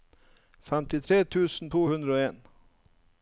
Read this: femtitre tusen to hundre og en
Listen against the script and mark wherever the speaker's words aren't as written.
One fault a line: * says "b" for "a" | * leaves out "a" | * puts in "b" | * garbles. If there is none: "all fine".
all fine